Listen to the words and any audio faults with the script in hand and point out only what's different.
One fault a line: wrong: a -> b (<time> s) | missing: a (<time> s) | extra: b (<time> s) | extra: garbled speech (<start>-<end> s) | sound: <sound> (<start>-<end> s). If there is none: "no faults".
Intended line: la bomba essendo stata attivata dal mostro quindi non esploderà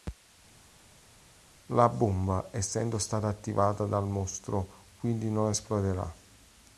no faults